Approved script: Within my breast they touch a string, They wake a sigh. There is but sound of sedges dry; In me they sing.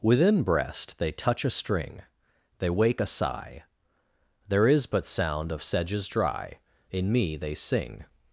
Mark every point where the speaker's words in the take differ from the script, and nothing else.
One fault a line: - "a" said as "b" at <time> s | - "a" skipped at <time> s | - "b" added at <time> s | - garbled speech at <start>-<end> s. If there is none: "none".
- "my" skipped at 0.4 s